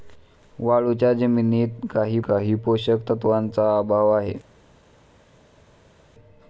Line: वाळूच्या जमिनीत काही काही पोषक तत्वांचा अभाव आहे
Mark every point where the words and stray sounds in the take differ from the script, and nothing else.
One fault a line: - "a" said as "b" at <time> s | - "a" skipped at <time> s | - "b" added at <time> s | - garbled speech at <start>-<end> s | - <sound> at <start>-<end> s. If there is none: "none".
none